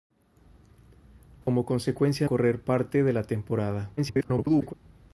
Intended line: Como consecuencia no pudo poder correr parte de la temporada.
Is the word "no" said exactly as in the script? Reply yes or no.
no